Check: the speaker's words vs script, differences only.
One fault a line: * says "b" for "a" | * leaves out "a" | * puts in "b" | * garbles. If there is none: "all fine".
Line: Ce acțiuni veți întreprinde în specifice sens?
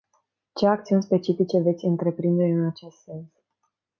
* puts in "specifice"
* says "acest" for "specifice"